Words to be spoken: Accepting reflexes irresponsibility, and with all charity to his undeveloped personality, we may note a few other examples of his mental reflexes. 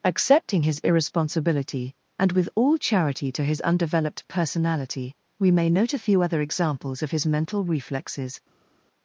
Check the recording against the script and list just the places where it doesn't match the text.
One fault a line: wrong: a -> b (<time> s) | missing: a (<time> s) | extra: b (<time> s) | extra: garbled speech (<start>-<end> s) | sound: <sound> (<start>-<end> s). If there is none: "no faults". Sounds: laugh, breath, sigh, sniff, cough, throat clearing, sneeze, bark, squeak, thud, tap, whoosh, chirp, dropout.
wrong: reflexes -> his (0.6 s)